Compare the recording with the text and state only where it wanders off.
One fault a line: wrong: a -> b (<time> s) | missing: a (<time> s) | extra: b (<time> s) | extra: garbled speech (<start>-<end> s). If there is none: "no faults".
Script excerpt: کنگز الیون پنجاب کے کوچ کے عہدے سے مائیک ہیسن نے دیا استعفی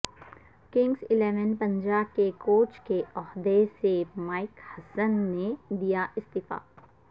no faults